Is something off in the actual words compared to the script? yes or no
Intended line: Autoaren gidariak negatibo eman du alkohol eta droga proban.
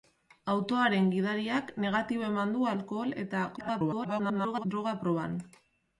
yes